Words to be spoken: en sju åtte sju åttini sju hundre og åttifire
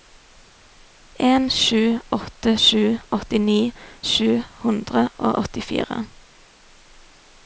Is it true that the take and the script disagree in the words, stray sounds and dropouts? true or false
false